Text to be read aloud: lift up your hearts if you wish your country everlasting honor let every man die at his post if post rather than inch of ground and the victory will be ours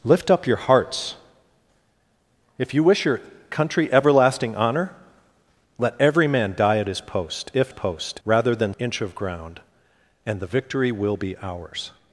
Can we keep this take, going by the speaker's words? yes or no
yes